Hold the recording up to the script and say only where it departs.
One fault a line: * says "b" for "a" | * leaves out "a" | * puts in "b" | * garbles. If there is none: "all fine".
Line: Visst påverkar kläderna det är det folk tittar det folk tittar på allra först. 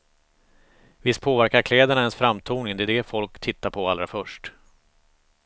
* says "ens framtoning" for "det är"
* says "är" for "folk tittar"